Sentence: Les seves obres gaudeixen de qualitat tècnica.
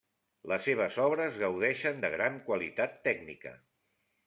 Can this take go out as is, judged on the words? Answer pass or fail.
fail